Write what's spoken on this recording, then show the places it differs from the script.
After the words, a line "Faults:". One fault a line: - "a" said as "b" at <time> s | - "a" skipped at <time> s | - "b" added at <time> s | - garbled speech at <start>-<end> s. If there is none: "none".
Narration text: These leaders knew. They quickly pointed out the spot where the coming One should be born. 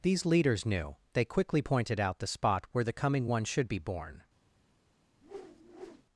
These leaders knew. They quickly pointed out the spot where the coming One should be born.
Faults:
none